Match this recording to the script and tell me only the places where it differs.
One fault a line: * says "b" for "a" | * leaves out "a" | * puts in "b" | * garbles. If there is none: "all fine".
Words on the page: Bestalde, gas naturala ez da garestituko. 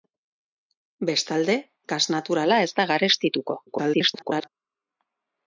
* garbles